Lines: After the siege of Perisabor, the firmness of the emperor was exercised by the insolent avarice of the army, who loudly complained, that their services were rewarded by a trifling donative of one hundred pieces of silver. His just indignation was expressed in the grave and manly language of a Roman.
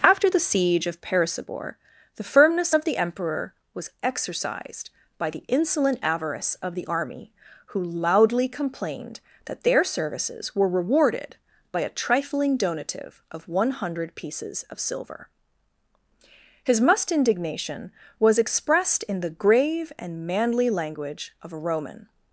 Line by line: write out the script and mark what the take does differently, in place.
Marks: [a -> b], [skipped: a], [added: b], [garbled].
After the siege of Perisabor, the firmness of the emperor was exercised by the insolent avarice of the army, who loudly complained, that their services were rewarded by a trifling donative of one hundred pieces of silver. His [just -> must] indignation was expressed in the grave and manly language of a Roman.